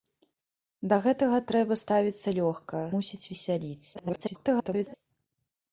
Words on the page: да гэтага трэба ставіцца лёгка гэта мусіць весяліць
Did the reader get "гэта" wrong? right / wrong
wrong